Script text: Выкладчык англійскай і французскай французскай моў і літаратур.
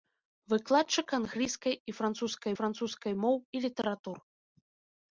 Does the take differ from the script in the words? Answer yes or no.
no